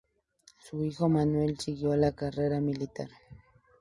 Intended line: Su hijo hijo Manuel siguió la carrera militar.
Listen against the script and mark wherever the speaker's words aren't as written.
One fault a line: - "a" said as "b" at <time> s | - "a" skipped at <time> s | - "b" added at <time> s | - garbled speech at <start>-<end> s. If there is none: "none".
- "hijo" skipped at 1.1 s